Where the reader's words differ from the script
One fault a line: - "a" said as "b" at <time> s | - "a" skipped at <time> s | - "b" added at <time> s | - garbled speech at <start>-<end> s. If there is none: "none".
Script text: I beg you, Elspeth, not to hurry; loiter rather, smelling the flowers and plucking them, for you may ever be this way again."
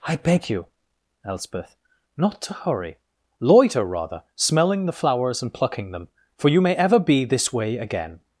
none